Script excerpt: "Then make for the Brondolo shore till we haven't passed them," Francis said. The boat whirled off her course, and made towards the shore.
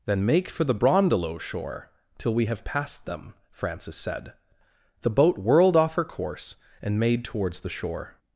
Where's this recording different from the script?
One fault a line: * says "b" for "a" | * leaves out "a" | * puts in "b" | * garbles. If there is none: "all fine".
* says "have" for "haven't"